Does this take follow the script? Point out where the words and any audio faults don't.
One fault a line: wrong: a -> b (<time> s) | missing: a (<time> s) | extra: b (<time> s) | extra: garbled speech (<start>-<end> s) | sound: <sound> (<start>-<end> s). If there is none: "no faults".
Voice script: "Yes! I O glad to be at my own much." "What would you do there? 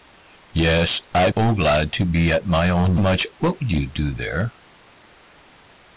no faults